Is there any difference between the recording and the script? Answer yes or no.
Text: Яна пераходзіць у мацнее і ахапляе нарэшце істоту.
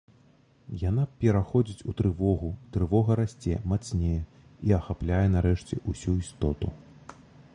yes